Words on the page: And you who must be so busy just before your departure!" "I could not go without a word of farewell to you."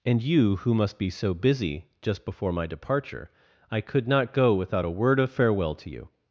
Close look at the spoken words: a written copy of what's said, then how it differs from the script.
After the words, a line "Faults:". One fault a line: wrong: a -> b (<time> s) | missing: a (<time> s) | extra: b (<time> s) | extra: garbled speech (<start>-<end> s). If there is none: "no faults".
And you who must be so busy just before my departure!" "I could not go without a word of farewell to you."
Faults:
wrong: your -> my (2.5 s)